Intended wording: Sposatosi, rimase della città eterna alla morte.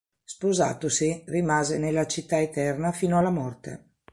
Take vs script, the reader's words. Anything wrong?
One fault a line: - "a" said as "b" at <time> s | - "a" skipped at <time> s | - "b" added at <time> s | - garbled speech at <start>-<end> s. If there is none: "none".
- "della" said as "nella" at 1.8 s
- "fino" added at 2.9 s